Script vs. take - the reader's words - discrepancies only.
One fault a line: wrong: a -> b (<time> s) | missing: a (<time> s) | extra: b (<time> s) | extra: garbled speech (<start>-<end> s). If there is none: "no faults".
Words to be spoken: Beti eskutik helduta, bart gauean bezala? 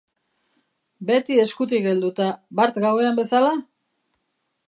no faults